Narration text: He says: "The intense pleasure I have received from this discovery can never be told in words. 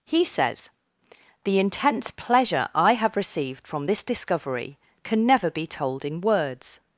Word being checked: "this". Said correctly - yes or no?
yes